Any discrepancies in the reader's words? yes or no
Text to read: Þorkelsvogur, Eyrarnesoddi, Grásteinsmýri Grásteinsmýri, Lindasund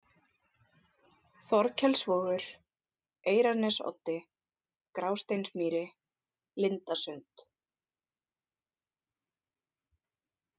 yes